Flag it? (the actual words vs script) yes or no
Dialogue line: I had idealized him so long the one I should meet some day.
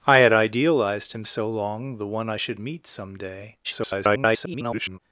yes